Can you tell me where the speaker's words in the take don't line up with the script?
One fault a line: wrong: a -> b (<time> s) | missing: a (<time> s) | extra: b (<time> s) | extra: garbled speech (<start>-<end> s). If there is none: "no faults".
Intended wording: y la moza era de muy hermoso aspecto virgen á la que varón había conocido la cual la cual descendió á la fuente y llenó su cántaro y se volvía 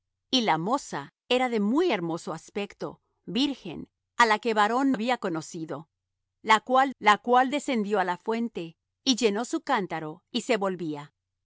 no faults